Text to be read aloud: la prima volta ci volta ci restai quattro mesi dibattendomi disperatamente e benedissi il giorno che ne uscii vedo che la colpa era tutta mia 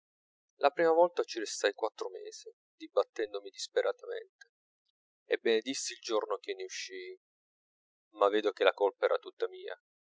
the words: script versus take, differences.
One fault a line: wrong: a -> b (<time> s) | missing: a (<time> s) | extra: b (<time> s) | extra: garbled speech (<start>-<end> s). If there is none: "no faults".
missing: volta ci (1.4 s)
extra: ma (8.1 s)